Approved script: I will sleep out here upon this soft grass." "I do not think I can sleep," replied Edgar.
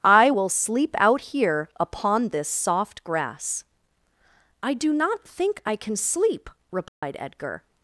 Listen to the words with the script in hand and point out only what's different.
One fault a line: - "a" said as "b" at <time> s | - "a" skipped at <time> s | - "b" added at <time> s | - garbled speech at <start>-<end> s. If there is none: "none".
none